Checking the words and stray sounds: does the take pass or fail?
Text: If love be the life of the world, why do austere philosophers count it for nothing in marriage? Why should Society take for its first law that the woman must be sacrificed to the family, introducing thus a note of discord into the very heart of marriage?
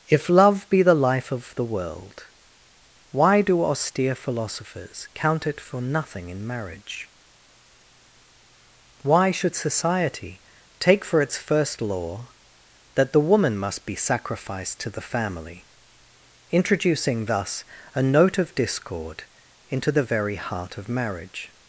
pass